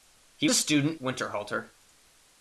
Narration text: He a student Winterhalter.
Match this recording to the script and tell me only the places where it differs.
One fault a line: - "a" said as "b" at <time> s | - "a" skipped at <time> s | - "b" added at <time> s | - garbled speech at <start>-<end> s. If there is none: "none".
none